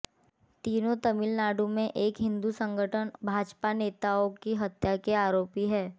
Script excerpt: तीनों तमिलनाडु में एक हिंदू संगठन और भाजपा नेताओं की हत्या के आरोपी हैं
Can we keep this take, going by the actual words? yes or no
no